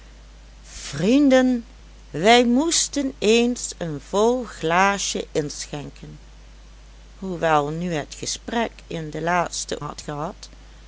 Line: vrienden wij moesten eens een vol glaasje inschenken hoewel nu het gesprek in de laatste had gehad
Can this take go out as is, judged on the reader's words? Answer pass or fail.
pass